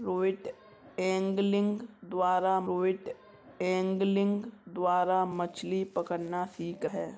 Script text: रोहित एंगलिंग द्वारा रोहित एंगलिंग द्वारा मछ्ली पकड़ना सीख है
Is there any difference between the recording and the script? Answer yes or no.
no